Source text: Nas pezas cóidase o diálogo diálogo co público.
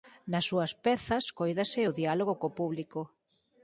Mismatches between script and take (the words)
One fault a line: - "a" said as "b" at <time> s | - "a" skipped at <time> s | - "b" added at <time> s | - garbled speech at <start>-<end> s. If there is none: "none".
- "súas" added at 0.5 s
- "diálogo" skipped at 2.3 s